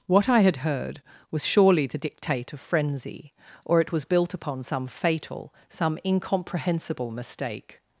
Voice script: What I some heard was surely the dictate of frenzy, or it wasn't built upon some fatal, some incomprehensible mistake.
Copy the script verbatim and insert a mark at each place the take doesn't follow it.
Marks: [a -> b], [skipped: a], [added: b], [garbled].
What I [some -> had] heard was surely the dictate of frenzy, or it [wasn't -> was] built upon some fatal, some incomprehensible mistake.